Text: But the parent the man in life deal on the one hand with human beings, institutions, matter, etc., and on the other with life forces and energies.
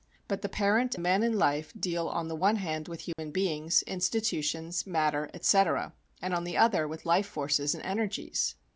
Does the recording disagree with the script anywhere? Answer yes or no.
no